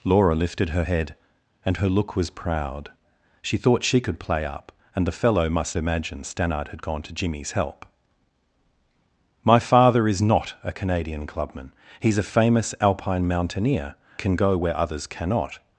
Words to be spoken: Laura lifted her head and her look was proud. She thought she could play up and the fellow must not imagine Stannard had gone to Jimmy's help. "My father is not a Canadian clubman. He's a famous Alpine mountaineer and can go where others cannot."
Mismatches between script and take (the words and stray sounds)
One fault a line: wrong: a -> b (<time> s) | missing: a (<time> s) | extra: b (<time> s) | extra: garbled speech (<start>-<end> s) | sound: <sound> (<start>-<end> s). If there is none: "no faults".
missing: not (5.8 s)
missing: and (14.0 s)